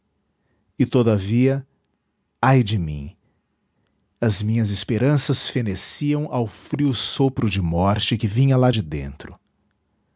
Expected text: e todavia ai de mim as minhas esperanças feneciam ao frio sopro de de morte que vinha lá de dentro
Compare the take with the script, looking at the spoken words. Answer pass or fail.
fail